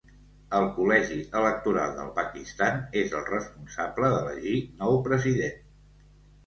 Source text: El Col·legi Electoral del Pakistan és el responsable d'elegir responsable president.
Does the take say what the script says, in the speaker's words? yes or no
no